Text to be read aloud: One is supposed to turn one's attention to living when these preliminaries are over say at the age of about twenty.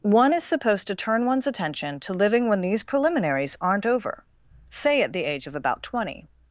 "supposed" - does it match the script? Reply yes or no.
yes